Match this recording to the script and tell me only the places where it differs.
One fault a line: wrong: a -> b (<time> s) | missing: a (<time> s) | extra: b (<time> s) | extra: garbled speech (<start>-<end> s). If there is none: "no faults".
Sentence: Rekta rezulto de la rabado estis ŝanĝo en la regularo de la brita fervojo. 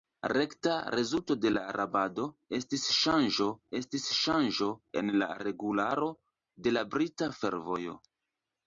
extra: estis ŝanĝo (3.8 s)